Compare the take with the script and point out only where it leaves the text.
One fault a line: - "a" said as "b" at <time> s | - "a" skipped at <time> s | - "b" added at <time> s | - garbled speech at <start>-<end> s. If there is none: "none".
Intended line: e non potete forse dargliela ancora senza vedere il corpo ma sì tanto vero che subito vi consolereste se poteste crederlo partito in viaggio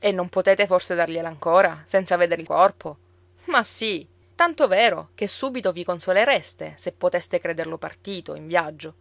none